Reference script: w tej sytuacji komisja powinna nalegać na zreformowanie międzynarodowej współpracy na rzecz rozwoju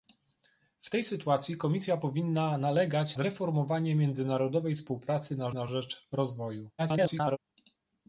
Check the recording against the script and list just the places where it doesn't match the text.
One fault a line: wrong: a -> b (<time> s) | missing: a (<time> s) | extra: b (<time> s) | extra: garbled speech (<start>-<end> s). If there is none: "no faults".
missing: na (3.2 s)
extra: na (5.5 s)
extra: garbled speech (6.8-7.4 s)